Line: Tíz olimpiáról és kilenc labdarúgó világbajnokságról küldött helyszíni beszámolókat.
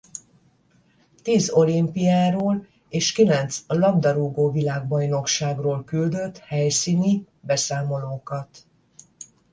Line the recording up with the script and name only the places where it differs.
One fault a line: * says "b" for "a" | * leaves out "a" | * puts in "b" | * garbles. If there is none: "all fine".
all fine